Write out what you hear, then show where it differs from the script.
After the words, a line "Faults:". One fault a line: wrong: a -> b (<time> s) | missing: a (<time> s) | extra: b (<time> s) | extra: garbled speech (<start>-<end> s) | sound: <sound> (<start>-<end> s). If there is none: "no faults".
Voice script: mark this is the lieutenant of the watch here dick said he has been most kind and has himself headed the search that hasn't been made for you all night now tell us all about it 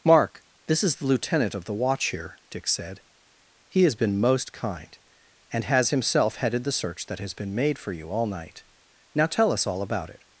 mark this is the lieutenant of the watch here dick said he has been most kind and has himself headed the search that has been made for you all night now tell us all about it
Faults:
wrong: hasn't -> has (7.2 s)